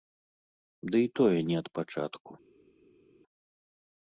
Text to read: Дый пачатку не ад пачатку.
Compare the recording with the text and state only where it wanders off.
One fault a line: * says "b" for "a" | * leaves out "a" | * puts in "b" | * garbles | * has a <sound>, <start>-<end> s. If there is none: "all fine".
* says "тое" for "пачатку"